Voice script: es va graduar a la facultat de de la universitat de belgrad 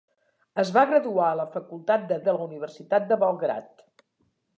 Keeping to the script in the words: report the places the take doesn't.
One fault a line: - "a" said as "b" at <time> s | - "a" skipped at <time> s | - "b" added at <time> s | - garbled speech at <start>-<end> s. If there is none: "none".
none